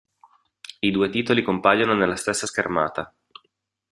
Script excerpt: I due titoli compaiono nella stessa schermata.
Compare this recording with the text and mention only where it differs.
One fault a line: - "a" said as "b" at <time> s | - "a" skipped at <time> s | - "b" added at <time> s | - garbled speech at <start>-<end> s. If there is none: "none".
none